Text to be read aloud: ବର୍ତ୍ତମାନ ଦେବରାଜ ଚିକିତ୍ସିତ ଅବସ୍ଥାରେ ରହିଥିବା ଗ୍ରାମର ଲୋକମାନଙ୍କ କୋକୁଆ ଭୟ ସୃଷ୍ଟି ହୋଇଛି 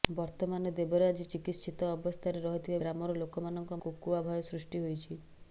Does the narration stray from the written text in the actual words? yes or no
no